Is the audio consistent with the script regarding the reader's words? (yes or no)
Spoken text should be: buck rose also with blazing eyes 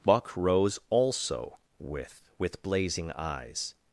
no